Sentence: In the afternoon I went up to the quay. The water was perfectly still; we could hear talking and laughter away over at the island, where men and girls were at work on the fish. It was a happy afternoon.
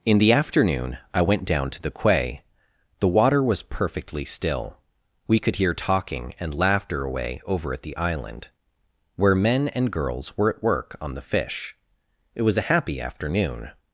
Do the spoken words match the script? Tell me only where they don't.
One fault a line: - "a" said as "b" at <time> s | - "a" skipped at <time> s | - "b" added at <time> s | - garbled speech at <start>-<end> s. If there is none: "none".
- "up" said as "down" at 1.4 s